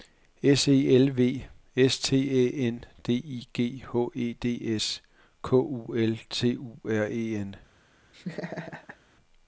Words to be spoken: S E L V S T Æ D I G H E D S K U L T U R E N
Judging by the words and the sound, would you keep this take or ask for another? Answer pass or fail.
fail